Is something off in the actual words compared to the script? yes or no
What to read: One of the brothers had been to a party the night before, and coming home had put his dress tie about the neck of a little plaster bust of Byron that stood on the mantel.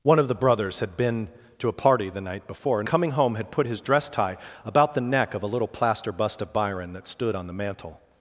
no